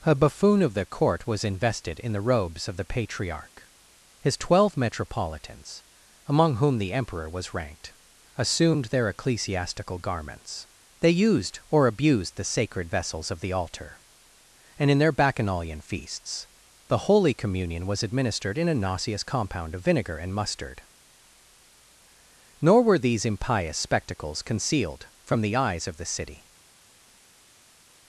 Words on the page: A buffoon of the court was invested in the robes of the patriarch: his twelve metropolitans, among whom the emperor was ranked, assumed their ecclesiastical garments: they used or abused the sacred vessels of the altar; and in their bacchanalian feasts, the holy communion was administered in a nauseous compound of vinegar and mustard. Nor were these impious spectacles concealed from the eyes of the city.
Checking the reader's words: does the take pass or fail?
pass